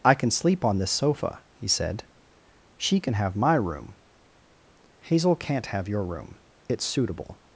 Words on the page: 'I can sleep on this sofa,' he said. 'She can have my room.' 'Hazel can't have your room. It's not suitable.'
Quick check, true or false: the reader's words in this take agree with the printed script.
false